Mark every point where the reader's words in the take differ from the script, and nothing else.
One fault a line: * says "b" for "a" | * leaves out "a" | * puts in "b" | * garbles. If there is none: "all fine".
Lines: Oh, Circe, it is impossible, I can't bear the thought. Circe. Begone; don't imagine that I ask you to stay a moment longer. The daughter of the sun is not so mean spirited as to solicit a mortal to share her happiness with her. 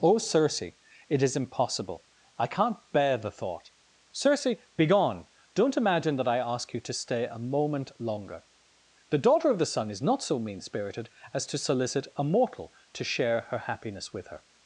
all fine